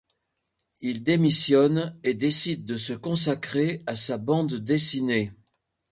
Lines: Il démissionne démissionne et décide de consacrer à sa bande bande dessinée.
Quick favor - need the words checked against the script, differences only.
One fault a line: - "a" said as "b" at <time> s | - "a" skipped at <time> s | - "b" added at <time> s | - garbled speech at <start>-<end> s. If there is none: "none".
- "démissionne" skipped at 2.0 s
- "se" added at 2.8 s
- "bande" skipped at 4.5 s